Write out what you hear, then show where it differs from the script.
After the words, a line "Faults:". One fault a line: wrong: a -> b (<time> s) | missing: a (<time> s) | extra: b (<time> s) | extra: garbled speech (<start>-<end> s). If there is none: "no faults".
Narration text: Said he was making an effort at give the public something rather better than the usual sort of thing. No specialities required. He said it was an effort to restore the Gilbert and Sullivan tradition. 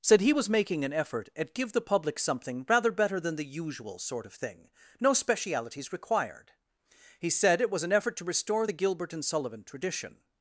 Said he was making an effort at give the public something rather better than the usual sort of thing. No specialities required. He said it was an effort to restore the Gilbert and Sullivan tradition.
Faults:
no faults